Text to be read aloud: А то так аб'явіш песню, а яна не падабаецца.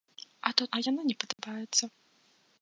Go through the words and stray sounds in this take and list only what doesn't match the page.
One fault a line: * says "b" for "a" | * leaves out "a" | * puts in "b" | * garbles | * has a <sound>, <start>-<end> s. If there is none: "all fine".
* leaves out "так аб'явіш песню"
* has a dropout, 1.3-1.4 s